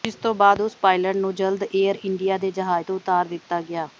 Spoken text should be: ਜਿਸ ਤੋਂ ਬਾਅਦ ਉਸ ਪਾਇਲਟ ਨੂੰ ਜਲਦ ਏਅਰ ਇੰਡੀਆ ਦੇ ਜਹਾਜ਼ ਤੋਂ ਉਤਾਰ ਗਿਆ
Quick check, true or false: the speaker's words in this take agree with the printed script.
false